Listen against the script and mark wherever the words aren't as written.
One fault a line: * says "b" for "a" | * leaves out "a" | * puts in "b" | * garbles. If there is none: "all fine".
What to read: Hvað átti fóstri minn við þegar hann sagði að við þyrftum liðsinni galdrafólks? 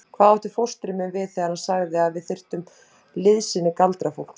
all fine